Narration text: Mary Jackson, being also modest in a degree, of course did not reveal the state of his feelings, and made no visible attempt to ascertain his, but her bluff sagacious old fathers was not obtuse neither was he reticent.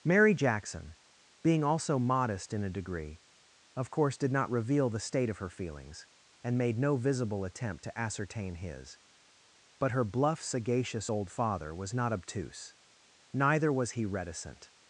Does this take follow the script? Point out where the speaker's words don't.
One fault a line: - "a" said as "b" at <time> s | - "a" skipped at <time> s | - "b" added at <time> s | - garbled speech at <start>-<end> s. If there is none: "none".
- "his" said as "her" at 5.4 s
- "fathers" said as "father" at 11.3 s